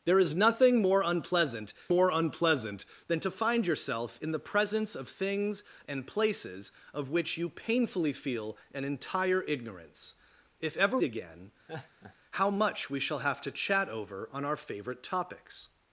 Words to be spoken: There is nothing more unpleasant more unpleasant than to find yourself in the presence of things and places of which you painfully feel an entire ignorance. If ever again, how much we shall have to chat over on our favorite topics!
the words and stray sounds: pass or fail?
fail